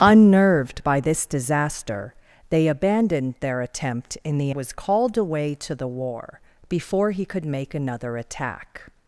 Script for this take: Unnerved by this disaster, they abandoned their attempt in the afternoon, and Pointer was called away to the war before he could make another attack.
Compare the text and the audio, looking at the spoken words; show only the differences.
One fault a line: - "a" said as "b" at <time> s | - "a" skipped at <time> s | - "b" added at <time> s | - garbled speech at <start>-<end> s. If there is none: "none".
- "afternoon and Pointer" skipped at 4.5 s